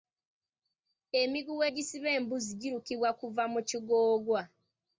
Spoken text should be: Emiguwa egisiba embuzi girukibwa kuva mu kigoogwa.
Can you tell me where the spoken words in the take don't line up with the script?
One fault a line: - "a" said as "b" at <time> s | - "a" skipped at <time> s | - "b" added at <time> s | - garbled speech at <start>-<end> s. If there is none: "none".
none